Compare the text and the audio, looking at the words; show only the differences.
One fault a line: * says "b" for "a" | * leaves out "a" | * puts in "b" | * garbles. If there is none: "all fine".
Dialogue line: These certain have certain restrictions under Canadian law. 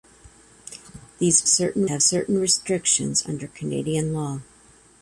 all fine